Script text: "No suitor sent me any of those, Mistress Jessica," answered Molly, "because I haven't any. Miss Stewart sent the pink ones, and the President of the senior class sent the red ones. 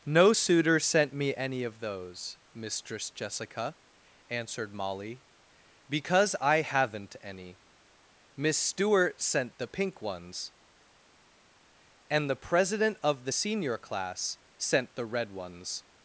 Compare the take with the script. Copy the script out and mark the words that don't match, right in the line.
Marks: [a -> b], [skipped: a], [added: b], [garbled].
"No suitor sent me any of those, Mistress Jessica," answered Molly, "because I haven't any. Miss Stewart sent the pink ones, and the President of the senior class sent the red ones.